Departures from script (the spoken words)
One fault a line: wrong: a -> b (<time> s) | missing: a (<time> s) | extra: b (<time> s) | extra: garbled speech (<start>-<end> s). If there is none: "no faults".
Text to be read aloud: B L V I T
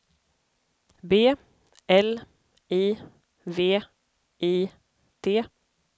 extra: I (2.7 s)